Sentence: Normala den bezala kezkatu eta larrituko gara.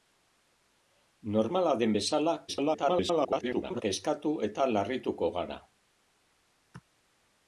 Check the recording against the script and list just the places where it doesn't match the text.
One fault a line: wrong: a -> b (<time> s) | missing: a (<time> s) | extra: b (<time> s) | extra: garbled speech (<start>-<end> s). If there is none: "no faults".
extra: garbled speech (2.5-3.8 s)